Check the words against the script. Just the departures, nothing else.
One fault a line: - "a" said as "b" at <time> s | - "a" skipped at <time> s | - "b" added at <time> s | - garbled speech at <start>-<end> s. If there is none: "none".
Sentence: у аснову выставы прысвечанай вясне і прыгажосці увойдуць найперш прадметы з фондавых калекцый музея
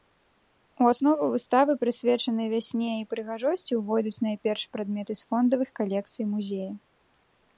none